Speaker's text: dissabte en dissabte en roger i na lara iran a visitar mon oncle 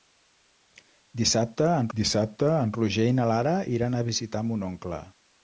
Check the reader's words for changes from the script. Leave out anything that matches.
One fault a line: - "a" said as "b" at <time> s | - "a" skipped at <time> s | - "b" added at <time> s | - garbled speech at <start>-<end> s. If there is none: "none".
none